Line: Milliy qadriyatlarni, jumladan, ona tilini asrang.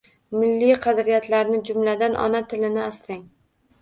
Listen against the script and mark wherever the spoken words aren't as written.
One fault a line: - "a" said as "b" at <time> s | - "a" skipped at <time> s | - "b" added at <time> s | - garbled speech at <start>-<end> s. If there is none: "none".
none